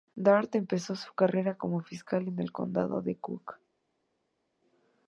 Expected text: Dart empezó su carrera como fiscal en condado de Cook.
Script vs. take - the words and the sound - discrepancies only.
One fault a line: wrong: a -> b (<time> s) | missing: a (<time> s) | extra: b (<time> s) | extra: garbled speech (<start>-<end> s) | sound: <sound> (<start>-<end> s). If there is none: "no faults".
extra: el (2.4 s)